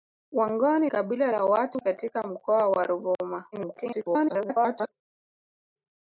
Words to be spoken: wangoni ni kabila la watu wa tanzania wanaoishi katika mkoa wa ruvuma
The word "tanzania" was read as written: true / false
false